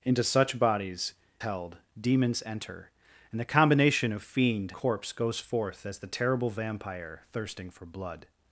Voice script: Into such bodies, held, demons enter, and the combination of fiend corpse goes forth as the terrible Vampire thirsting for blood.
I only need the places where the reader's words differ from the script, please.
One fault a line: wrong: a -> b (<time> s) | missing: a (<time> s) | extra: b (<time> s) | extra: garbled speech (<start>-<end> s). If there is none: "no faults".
no faults